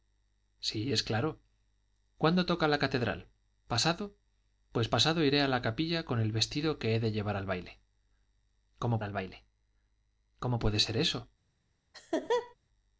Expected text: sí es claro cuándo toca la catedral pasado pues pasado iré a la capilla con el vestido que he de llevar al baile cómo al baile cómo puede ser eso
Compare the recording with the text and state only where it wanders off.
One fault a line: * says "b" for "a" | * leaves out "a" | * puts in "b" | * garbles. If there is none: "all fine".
all fine